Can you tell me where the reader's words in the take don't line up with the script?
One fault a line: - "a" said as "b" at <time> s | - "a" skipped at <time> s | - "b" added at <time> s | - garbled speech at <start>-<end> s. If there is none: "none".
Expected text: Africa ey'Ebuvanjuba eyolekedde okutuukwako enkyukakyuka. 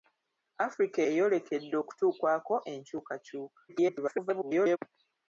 - "ey'Ebuvanjuba" skipped at 1.0 s
- garbled speech at 3.7-4.8 s